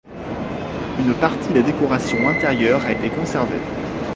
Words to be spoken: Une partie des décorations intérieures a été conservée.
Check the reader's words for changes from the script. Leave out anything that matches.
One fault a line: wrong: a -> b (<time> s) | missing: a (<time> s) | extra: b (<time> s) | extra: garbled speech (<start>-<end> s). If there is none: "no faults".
no faults